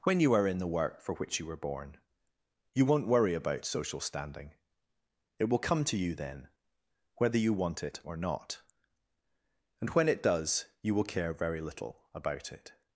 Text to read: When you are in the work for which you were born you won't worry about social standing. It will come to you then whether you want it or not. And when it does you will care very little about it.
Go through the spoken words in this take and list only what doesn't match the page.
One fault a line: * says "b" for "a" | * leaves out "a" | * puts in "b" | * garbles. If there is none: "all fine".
all fine